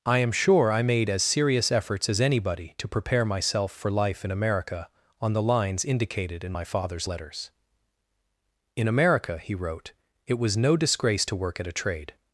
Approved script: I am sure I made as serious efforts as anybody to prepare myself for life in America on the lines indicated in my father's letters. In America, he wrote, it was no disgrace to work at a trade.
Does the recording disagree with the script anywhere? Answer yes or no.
no